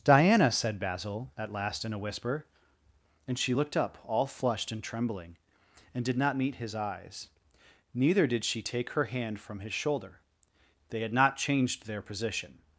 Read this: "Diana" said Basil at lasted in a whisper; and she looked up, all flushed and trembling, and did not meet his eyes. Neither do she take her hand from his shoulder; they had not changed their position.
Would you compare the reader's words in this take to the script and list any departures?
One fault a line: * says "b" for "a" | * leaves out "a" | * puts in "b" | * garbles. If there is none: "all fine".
* says "last" for "lasted"
* says "did" for "do"